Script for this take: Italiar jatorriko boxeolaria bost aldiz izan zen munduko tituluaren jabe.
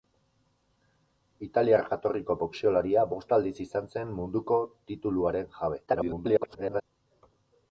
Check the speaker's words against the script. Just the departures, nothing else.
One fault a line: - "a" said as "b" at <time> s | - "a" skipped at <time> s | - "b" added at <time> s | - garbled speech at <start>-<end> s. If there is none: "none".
- garbled speech at 5.9-6.8 s